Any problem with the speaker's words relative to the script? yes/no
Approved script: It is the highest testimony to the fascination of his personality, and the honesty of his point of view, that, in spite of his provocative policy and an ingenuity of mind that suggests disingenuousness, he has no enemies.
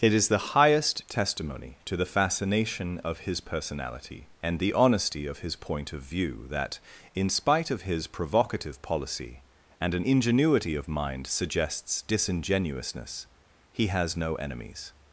yes